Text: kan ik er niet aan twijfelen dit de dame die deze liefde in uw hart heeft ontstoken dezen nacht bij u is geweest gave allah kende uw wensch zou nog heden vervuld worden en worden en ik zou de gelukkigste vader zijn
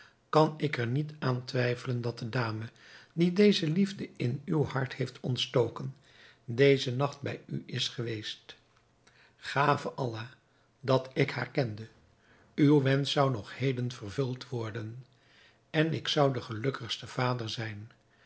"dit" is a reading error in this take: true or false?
true